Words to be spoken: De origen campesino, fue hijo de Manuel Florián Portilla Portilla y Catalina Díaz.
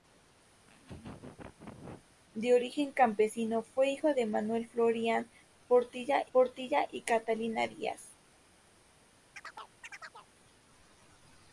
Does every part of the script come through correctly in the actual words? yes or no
yes